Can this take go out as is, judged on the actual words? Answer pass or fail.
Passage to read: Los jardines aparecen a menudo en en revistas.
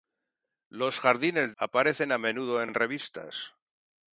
pass